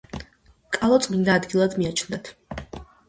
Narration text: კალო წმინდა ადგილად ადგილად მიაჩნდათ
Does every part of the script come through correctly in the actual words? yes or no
no